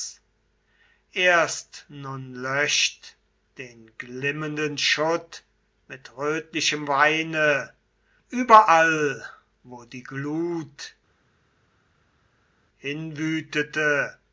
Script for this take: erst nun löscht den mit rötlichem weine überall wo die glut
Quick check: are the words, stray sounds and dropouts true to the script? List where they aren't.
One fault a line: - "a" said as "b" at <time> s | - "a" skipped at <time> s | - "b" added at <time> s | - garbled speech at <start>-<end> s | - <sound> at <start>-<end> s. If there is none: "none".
- "glimmenden schutt" added at 4.0 s